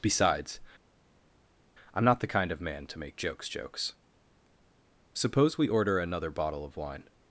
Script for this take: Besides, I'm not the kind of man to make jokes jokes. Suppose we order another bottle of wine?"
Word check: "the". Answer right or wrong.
right